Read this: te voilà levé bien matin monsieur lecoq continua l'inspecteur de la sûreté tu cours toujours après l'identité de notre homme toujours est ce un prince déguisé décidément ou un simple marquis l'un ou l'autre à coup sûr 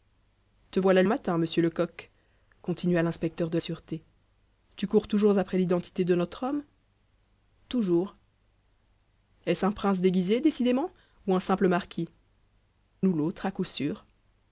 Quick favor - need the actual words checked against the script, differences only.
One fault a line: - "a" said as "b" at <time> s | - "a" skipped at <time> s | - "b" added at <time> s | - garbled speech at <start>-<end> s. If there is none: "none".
- "levé bien" skipped at 1.0 s
- "la" skipped at 3.6 s
- "l'un" skipped at 12.1 s